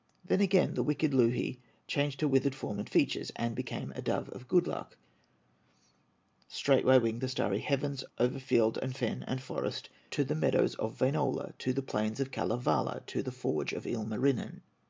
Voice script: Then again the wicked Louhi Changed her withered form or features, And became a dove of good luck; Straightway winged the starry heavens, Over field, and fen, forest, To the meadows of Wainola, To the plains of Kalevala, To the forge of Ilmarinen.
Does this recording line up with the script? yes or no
no